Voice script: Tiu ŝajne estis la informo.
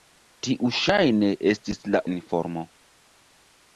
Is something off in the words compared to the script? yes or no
no